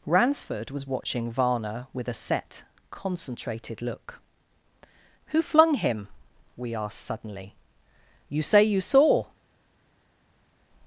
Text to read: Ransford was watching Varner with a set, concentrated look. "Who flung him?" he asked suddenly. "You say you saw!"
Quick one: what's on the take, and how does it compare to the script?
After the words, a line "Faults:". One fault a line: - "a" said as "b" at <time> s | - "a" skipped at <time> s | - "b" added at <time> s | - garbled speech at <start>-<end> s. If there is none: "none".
Ransford was watching Varner with a set, concentrated look. "Who flung him?" we asked suddenly. "You say you saw!"
Faults:
- "he" said as "we" at 6.6 s